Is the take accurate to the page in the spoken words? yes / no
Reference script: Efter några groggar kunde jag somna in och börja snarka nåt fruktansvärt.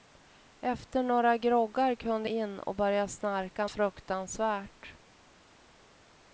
no